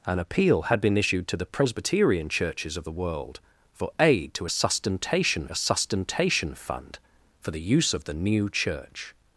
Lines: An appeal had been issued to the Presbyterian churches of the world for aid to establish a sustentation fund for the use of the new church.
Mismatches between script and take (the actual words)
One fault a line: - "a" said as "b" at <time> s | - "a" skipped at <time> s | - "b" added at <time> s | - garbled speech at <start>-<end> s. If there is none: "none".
- "establish" said as "sustentation" at 4.5 s